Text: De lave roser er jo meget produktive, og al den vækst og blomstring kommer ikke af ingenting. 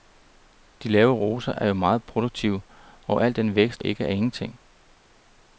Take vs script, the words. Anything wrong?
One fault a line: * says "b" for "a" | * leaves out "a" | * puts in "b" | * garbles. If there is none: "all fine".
* leaves out "og blomstring kommer"